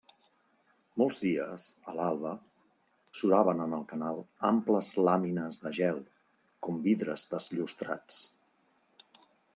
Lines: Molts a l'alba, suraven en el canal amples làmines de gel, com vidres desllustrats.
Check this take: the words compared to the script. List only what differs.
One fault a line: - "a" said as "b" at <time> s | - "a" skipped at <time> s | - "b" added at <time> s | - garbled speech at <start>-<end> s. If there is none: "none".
- "dies" added at 1.2 s